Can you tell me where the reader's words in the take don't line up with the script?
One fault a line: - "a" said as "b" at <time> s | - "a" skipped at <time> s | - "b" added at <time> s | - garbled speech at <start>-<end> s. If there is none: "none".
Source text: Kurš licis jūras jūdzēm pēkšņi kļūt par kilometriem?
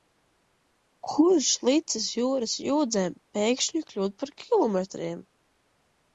none